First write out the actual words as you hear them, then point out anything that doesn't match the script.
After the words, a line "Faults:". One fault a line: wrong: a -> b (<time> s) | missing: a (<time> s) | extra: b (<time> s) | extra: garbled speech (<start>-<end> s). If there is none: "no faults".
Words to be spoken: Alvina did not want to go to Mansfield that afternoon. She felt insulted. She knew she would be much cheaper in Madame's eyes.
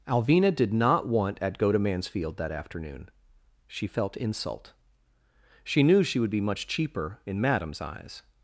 Alvina did not want at go to Mansfield that afternoon. She felt insult. She knew she would be much cheaper in Madame's eyes.
Faults:
wrong: to -> at (1.4 s)
wrong: insulted -> insult (4.2 s)